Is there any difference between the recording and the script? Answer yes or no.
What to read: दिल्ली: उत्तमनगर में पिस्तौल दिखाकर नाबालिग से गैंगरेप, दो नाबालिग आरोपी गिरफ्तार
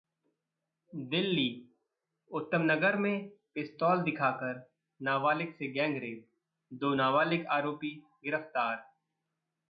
no